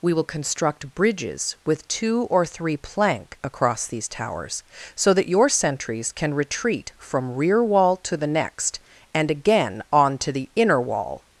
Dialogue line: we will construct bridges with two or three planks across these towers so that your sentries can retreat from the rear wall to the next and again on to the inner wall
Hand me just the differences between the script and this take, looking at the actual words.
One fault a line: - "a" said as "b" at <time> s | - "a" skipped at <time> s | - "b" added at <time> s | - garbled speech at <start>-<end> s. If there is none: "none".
- "planks" said as "plank" at 2.8 s
- "the" skipped at 7.3 s